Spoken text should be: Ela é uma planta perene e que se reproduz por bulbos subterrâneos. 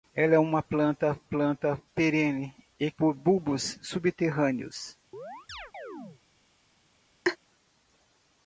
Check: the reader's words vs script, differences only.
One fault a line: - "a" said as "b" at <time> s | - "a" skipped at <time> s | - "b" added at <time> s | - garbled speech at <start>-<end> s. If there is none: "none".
- "planta" added at 1.2 s
- "que se reproduz" skipped at 2.9 s